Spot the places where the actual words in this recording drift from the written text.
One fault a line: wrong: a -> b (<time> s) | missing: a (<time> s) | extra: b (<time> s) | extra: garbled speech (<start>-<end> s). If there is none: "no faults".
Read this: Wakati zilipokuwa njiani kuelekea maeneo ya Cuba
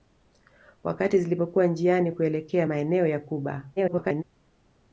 extra: garbled speech (3.8-4.2 s)